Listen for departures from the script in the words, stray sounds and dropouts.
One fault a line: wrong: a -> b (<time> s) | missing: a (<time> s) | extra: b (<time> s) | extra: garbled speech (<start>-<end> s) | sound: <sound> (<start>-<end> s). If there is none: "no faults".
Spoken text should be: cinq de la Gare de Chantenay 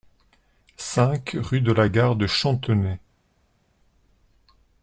extra: rue (1.4 s)